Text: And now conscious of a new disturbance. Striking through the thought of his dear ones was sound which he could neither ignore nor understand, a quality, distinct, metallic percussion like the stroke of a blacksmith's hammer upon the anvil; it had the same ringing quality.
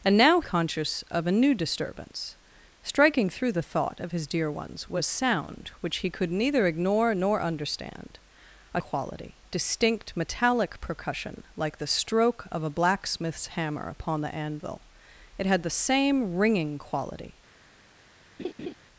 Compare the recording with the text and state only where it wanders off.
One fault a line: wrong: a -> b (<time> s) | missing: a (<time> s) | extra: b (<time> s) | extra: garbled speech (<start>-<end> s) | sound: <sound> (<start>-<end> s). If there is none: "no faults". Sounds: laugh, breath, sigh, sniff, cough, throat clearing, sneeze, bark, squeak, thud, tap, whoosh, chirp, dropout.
sound: laugh (18.4-18.7 s)